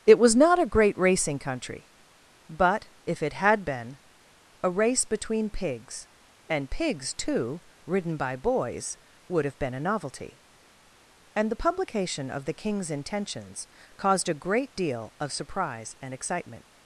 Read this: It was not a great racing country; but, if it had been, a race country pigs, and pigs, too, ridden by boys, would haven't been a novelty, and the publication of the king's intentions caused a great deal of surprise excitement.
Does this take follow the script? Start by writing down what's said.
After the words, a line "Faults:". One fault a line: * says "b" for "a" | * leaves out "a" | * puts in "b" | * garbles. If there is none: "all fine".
It was not a great racing country; but, if it had been, a race between pigs, and pigs, too, ridden by boys, would have been a novelty, and the publication of the king's intentions caused a great deal of surprise and excitement.
Faults:
* says "between" for "country"
* says "have" for "haven't"
* puts in "and"